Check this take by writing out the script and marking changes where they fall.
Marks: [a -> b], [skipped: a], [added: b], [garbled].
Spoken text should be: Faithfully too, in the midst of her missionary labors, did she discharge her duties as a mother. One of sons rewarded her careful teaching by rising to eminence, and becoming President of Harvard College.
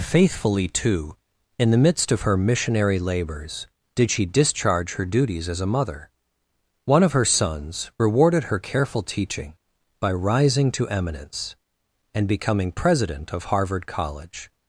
Faithfully too, in the midst of her missionary labors, did she discharge her duties as a mother. One of [added: her] sons rewarded her careful teaching by rising to eminence, and becoming President of Harvard College.